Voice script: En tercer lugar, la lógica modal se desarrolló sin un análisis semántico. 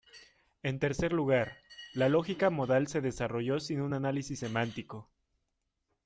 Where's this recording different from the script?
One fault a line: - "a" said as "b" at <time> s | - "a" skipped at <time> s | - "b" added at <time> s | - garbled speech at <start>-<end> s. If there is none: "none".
none